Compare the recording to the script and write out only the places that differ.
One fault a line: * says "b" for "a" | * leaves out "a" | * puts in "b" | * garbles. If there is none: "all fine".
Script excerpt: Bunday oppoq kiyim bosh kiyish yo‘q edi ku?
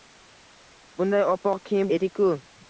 * leaves out "bosh kiyish yo‘q"